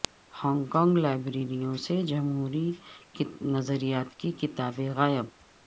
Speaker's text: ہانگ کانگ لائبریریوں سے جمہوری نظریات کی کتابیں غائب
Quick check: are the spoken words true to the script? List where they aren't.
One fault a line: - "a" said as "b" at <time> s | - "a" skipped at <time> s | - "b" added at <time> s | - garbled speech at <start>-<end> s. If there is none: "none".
none